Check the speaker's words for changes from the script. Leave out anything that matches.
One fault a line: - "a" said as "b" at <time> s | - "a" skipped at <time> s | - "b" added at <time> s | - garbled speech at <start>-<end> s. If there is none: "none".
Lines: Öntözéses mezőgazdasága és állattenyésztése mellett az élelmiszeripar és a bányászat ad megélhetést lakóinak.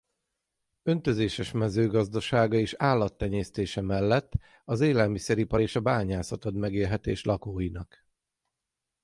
none